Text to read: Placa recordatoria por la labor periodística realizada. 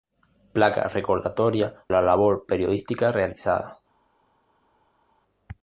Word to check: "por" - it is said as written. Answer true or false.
false